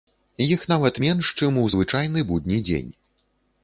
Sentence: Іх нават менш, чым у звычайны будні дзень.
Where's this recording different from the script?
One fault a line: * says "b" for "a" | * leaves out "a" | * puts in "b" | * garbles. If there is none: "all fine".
all fine